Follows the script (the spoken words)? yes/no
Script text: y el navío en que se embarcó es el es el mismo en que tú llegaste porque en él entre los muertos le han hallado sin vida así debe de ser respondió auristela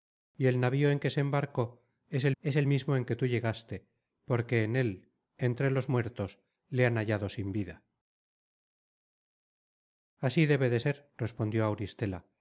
yes